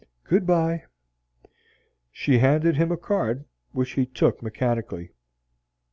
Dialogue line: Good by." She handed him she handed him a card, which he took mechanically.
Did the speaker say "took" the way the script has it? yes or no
yes